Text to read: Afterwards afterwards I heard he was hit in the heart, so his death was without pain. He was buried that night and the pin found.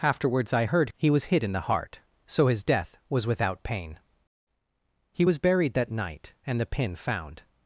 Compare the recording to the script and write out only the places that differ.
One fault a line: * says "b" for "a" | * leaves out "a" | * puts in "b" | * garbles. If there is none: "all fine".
* leaves out "afterwards"